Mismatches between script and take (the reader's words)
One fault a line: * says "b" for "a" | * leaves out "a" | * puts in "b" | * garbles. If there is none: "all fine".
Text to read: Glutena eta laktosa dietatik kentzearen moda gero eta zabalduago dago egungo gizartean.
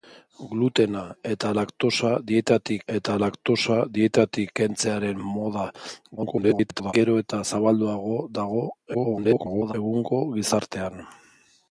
* puts in "eta laktosa dietatik"
* garbles
* garbles